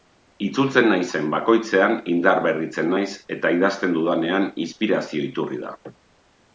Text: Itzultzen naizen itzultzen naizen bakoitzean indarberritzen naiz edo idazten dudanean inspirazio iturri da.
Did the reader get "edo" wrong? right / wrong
wrong